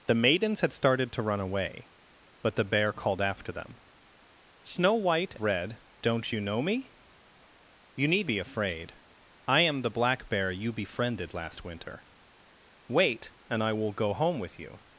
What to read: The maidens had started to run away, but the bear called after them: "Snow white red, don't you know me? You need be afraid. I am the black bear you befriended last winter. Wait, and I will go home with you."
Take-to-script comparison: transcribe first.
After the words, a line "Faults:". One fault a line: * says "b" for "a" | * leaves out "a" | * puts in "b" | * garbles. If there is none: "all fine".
The maidens had started to run away, but the bear called after them: "Snow white red, don't you know me? You need be afraid. I am the black bear you befriended last winter. Wait, and I will go home with you."
Faults:
all fine